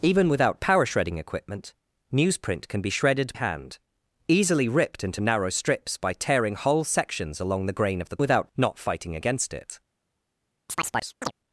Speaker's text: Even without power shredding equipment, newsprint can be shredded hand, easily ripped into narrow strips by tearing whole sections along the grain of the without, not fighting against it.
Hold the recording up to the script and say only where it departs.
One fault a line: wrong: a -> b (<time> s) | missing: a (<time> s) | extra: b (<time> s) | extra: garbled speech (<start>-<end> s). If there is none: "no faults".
no faults